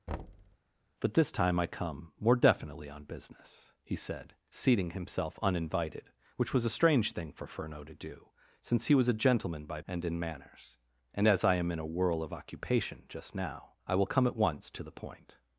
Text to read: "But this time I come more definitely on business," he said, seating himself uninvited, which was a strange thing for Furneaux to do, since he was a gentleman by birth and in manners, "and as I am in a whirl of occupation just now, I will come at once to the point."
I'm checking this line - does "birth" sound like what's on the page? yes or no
no